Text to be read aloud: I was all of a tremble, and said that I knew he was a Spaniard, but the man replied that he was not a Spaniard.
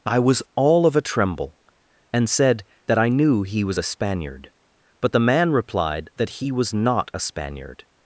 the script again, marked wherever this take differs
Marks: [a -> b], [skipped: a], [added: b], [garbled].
I was all of a tremble, and said that I knew he was a Spaniard, but the man replied that he was not a Spaniard.